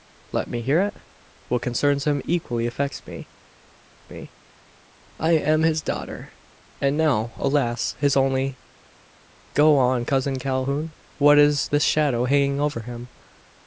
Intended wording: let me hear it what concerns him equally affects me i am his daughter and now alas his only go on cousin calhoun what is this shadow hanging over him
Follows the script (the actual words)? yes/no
no